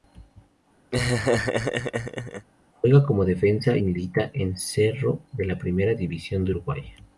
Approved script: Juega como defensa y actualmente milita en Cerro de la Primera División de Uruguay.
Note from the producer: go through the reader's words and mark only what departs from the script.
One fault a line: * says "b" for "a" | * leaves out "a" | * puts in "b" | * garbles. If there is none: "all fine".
* leaves out "y actualmente"